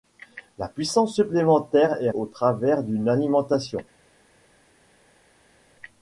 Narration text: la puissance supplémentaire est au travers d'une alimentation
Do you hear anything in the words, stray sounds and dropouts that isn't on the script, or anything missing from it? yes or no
no